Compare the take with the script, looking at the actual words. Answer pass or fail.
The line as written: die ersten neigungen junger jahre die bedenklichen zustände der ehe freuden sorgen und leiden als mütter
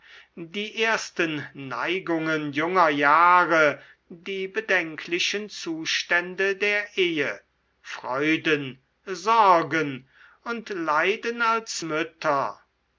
pass